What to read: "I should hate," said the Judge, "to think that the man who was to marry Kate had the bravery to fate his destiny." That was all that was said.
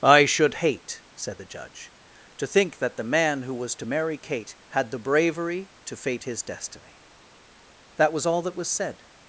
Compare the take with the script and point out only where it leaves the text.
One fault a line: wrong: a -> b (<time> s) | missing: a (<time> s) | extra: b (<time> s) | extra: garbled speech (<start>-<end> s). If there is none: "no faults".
no faults